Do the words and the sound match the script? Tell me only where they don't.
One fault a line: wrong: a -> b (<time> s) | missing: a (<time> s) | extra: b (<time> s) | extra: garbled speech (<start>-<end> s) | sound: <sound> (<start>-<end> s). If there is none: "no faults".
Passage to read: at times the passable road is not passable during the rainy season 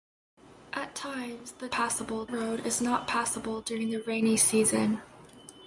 no faults